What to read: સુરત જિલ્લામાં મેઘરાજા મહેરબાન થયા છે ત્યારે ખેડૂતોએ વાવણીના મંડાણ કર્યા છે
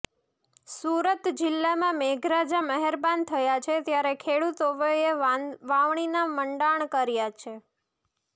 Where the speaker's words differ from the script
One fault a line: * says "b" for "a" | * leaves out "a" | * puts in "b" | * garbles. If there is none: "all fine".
all fine